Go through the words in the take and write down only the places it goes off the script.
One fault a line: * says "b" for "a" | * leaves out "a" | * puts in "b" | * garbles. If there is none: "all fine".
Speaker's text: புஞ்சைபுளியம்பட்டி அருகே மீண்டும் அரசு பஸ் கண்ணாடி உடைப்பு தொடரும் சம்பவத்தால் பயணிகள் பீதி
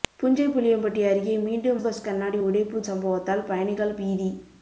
* leaves out "அரசு"
* leaves out "தொடரும்"